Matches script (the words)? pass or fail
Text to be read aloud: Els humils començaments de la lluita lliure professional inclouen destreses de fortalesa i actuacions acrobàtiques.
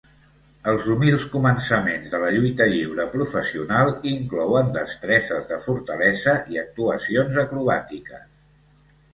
pass